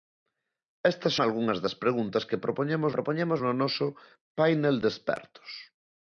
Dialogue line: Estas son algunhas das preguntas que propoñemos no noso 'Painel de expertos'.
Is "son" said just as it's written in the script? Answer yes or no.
no